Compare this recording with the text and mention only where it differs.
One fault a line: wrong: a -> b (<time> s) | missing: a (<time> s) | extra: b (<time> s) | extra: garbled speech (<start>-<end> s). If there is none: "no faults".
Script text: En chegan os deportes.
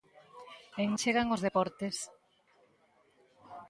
no faults